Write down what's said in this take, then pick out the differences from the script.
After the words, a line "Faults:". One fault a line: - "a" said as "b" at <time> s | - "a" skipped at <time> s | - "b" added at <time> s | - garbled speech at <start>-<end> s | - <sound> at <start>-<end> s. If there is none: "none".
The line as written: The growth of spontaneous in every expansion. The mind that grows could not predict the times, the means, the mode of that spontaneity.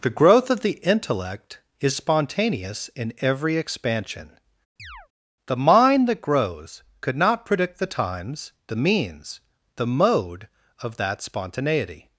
The growth of the intellect is spontaneous in every expansion. The mind that grows could not predict the times, the means, the mode of that spontaneity.
Faults:
- "the intellect is" added at 0.6 s
- chirp at 4.8-5.1 s